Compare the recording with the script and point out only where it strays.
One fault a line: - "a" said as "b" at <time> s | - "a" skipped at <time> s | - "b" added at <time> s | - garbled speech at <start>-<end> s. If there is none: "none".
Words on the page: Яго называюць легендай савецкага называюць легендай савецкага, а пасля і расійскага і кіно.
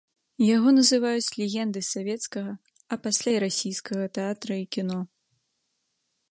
- "называюць легендай савецкага" skipped at 2.5 s
- "тэатра" added at 4.2 s